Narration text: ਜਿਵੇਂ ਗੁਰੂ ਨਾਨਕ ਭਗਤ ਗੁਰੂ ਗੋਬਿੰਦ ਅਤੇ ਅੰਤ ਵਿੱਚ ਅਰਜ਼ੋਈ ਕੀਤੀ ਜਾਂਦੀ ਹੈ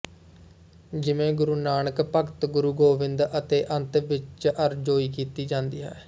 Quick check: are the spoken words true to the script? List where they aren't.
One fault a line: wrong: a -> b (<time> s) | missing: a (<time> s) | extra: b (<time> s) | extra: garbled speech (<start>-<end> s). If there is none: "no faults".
no faults